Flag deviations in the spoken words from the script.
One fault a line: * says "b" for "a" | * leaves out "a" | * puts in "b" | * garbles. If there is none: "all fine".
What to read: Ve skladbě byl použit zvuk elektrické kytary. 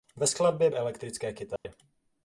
* leaves out "byl použit zvuk"